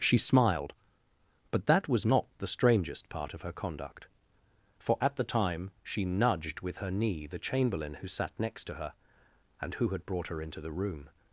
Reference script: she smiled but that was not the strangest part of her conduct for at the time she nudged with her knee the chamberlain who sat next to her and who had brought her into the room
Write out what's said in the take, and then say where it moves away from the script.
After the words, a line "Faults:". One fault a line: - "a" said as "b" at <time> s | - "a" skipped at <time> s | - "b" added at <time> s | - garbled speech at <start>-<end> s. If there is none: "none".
she smiled but that was not the strangest part of her conduct for at the time she nudged with her knee the chamberlain who sat next to her and who had brought her into the room
Faults:
none